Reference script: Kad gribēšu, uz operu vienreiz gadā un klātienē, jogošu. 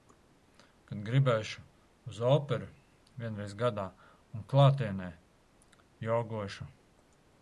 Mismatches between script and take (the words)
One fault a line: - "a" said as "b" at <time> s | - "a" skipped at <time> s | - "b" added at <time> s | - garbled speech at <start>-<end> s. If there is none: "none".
none